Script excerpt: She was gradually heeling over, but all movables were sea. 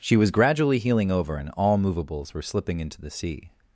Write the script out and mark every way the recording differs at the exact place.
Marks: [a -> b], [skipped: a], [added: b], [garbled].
She was gradually heeling over, [but -> and] all movables were [added: slipping into the] sea.